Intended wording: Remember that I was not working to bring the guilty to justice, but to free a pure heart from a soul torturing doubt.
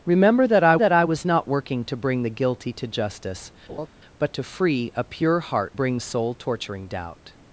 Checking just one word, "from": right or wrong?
wrong